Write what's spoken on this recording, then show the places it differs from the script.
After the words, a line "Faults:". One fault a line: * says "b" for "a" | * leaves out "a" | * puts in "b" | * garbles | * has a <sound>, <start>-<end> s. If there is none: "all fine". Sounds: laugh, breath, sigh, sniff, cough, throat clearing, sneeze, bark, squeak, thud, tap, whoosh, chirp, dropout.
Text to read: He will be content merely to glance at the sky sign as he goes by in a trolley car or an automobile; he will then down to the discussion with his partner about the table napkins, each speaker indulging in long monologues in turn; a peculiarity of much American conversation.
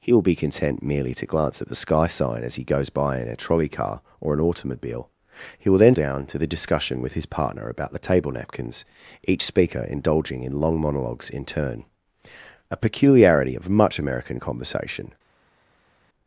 He will be content merely to glance at the sky sign as he goes by in a trolley car or an automobile; he will then down to the discussion with his partner about the table napkins, each speaker indulging in long monologues in turn; a peculiarity of much American conversation.
Faults:
all fine